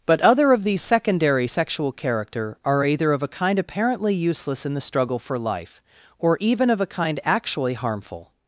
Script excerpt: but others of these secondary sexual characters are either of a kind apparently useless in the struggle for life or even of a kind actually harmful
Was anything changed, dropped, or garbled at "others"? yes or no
yes